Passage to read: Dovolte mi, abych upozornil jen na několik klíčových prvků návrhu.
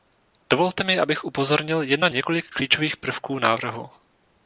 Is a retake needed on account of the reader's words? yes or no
no